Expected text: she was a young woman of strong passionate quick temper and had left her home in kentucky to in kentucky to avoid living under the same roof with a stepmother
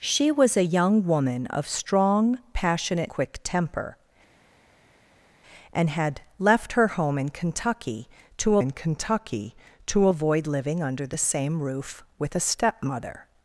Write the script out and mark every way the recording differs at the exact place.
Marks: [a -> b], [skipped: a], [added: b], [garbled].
she was a young woman of strong passionate quick temper and had left her home in kentucky to in kentucky to avoid living under the same roof with a stepmother